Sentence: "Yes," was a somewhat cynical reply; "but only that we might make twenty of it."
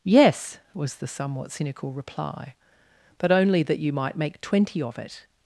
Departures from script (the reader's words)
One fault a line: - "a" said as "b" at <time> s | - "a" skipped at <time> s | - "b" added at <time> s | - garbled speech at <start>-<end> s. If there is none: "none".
- "a" said as "the" at 0.9 s
- "we" said as "you" at 3.8 s